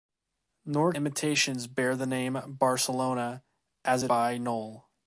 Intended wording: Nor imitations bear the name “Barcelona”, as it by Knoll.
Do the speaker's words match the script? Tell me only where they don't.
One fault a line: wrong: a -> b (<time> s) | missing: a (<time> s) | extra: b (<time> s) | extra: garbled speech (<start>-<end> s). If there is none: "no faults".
no faults